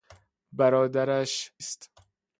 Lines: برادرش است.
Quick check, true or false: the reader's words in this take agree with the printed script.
true